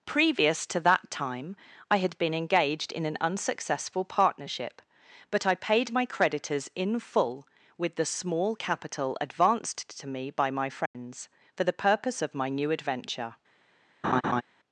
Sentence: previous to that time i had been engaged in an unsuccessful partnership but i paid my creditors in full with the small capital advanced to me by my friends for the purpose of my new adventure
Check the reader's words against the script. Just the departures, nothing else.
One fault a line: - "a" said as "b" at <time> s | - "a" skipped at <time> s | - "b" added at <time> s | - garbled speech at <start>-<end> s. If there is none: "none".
none